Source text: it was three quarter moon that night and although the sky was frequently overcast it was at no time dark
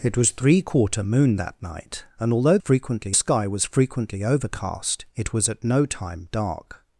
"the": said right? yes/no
no